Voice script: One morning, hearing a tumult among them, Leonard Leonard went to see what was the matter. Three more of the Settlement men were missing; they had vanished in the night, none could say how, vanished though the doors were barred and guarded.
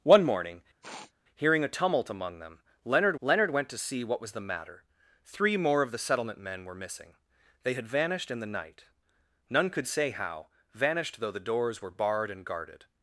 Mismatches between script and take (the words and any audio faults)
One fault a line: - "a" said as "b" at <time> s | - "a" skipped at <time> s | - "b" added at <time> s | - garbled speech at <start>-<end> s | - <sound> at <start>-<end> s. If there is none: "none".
- sniff at 0.8-1.1 s